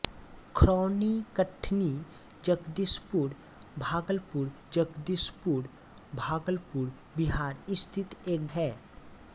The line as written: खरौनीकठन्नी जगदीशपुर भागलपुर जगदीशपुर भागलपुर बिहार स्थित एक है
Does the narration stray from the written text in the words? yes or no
no